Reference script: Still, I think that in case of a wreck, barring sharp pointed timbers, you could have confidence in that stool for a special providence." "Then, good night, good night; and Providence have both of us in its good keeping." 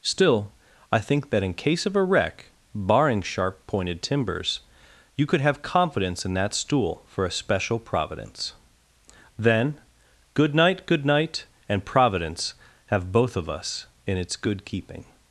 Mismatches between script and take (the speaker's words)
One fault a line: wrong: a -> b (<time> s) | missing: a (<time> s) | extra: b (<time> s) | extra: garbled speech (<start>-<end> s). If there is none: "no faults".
no faults